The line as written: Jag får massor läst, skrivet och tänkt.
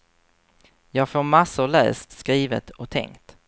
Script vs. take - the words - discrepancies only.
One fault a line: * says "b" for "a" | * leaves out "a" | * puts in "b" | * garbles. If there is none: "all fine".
all fine